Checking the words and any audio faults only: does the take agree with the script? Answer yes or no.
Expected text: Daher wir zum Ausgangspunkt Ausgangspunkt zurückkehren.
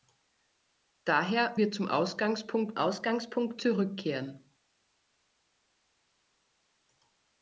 yes